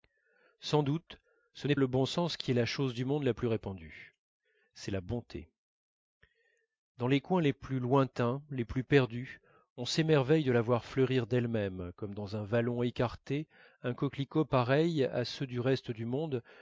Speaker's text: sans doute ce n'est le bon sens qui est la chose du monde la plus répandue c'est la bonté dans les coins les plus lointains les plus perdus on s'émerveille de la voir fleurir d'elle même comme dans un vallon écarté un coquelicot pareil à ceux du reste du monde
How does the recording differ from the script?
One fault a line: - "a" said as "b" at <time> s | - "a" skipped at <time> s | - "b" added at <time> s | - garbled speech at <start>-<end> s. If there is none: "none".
none